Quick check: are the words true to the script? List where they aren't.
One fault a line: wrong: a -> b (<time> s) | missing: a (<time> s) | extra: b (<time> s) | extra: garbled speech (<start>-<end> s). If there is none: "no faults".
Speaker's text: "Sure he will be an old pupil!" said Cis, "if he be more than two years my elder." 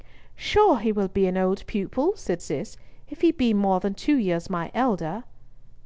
no faults